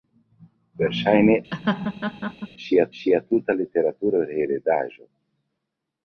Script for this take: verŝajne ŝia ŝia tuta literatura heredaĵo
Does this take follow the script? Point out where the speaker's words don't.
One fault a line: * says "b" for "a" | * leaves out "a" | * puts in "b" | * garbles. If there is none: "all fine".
all fine